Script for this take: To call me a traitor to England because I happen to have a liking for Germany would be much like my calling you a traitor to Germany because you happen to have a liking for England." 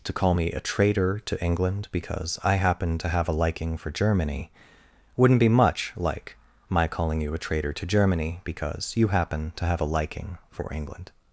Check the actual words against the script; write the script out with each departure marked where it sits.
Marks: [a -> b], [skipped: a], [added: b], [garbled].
To call me a traitor to England because I happen to have a liking for Germany [would -> wouldn't] be much like my calling you a traitor to Germany because you happen to have a liking for England."